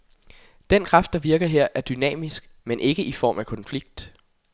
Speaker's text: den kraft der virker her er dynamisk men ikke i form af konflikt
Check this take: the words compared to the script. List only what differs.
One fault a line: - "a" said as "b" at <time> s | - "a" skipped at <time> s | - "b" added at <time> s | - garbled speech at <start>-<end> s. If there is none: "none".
none